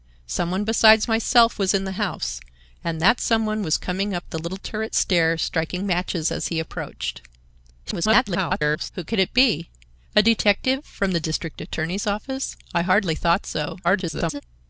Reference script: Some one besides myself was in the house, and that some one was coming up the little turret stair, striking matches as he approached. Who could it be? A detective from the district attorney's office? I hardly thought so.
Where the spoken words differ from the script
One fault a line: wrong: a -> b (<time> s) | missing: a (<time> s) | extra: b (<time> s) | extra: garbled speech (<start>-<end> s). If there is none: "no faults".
extra: garbled speech (7.8-8.9 s)
extra: garbled speech (13.8-14.4 s)